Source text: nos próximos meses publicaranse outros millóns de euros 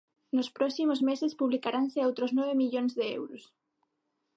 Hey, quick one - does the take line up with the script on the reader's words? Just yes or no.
no